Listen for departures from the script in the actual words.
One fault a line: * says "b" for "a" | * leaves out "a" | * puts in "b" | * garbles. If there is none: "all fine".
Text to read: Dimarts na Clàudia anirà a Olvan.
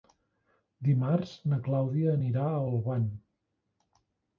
all fine